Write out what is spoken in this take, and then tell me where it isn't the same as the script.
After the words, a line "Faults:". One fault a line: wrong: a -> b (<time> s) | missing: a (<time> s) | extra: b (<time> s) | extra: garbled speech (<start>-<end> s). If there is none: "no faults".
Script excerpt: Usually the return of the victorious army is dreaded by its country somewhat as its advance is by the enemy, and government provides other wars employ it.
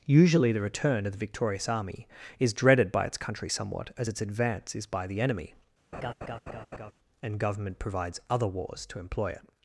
Usually the return of the victorious army is dreaded by its country somewhat as its advance is by the enemy, and government provides other wars to employ it.
Faults:
extra: to (8.9 s)